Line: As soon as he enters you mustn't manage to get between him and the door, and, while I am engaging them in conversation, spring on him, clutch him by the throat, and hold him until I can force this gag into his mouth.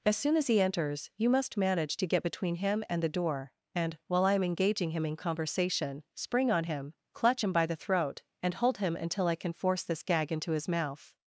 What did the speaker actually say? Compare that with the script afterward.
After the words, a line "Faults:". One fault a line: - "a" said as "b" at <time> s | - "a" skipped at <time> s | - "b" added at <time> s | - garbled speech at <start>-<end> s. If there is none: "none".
As soon as he enters you must manage to get between him and the door, and, while I am engaging him in conversation, spring on him, clutch him by the throat, and hold him until I can force this gag into his mouth.
Faults:
- "mustn't" said as "must" at 1.3 s
- "them" said as "him" at 4.9 s